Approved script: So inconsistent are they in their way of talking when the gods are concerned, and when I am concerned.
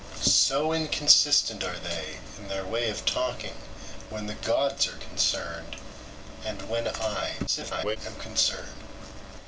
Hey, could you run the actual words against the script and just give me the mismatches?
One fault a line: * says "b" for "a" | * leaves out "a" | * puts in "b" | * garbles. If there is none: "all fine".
* garbles